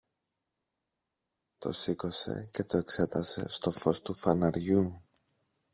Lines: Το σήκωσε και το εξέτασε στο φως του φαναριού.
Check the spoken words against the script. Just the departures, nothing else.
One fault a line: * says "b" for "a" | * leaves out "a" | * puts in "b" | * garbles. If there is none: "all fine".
all fine